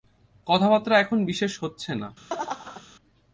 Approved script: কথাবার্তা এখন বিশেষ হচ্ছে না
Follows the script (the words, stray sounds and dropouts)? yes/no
no